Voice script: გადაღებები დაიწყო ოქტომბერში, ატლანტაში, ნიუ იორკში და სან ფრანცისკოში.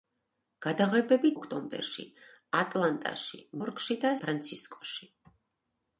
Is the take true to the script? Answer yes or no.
no